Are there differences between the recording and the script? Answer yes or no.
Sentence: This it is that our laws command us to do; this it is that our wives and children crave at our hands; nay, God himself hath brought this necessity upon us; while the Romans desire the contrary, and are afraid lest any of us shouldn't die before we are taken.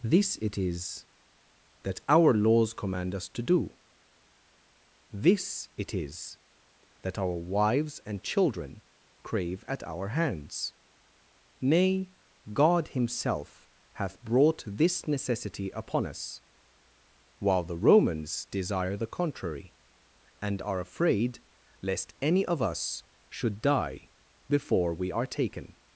yes